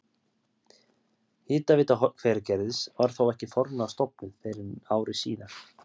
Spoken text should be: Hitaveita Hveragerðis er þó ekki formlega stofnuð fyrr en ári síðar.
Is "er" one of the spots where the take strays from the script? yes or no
yes